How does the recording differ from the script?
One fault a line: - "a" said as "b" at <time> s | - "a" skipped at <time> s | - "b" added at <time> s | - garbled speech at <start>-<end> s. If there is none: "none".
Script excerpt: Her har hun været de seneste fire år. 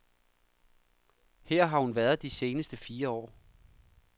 none